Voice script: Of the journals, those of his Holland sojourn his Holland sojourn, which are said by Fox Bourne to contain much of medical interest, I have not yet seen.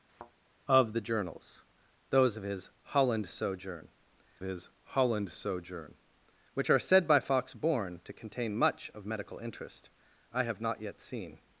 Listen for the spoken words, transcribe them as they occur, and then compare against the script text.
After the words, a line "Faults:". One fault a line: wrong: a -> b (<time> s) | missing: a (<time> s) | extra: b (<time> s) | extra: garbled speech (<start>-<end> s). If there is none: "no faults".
Of the journals, those of his Holland sojourn his Holland sojourn, which are said by Fox Bourne to contain much of medical interest, I have not yet seen.
Faults:
no faults